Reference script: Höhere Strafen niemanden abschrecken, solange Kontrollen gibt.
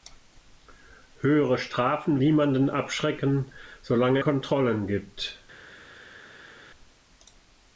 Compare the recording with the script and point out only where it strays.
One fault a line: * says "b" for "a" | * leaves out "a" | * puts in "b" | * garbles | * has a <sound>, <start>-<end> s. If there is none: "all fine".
all fine